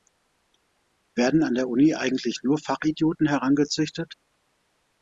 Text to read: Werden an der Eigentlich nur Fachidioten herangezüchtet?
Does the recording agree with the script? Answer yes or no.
no